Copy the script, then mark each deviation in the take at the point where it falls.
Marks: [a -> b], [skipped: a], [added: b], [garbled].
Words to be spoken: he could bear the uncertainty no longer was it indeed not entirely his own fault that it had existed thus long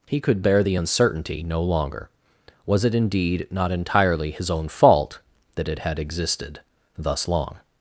he could bear the uncertainty no longer was it indeed not entirely his own fault that it had existed thus long